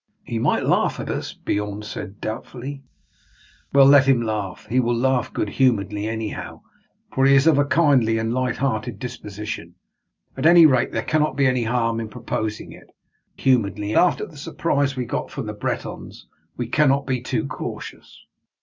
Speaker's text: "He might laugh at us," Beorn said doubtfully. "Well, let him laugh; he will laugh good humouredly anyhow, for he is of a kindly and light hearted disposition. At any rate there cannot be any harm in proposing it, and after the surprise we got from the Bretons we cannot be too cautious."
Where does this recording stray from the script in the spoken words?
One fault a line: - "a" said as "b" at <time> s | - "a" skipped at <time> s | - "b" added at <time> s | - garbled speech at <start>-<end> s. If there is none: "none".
- "and" said as "humouredly" at 13.4 s